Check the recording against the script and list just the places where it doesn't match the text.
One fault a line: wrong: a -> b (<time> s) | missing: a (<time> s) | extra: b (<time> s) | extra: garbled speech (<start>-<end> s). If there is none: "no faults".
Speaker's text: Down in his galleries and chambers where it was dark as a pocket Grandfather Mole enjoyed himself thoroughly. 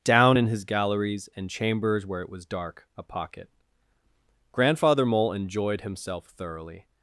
missing: as (2.9 s)